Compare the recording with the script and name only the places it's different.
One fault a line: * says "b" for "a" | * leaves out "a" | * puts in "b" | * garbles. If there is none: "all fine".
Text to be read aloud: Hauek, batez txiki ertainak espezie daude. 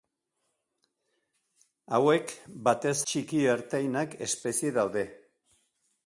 all fine